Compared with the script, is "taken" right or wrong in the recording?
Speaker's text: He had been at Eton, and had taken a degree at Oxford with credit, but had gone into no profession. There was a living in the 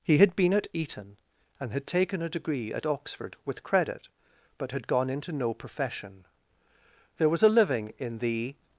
right